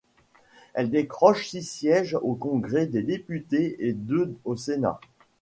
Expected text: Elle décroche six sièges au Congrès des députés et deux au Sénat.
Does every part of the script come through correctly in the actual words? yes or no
yes